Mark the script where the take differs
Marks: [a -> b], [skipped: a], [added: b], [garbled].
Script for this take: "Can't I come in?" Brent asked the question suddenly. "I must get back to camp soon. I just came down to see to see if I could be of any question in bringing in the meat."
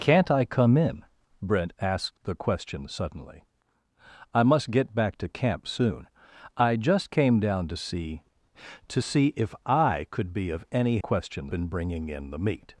"Can't I come in?" Brent asked the question suddenly. "I must get back to camp soon. I just came down to see to see if I could be of any question in bringing in the meat."